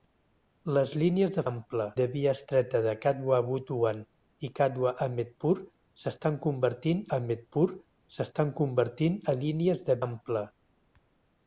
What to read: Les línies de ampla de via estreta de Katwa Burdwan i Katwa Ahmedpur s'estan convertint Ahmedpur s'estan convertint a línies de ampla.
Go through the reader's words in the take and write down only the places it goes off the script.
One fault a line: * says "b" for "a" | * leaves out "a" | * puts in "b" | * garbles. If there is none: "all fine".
all fine